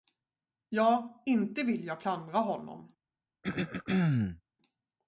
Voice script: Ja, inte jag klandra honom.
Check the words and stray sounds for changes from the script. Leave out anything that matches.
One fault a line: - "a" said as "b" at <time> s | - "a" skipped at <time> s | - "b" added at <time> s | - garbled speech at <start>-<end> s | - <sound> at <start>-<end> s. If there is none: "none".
- "vill" added at 1.6 s
- throat clearing at 3.4-4.4 s